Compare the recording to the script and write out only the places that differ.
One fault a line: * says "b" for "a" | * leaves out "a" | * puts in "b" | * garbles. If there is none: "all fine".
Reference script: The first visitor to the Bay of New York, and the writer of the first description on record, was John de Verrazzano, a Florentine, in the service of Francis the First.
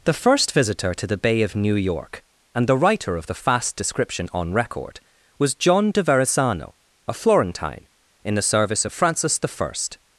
* says "fast" for "first"